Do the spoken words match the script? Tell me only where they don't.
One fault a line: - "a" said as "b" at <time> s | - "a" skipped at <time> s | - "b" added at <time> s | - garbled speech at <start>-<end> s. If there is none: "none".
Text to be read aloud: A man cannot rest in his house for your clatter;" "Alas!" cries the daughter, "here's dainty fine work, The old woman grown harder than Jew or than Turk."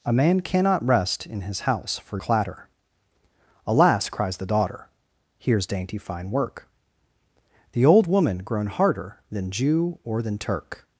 - "your" skipped at 2.2 s